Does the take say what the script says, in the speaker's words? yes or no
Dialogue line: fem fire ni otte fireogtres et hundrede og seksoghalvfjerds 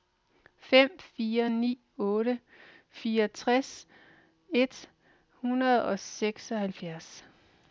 yes